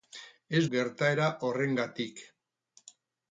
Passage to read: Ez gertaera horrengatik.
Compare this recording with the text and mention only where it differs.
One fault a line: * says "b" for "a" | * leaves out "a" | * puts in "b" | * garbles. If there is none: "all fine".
all fine